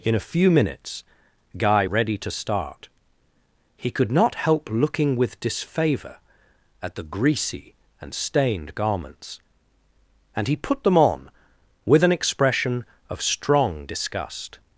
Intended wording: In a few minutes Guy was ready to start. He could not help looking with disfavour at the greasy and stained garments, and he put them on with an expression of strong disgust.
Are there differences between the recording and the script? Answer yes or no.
yes